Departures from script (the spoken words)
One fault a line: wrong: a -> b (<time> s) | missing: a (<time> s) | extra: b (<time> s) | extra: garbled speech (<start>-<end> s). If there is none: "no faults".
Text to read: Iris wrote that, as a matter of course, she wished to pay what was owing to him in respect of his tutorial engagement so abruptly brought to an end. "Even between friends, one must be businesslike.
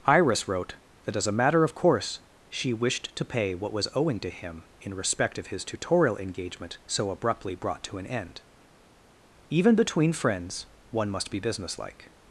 no faults